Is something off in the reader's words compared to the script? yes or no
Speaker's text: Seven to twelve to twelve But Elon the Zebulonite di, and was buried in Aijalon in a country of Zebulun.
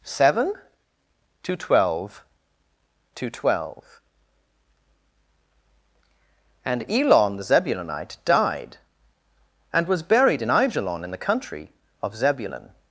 yes